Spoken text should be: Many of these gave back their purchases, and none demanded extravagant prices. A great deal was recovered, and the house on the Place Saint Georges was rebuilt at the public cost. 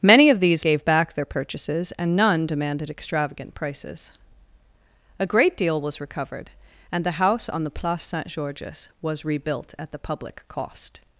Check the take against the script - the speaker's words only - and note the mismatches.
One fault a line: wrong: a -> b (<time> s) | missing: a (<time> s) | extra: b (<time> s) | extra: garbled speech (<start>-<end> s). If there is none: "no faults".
no faults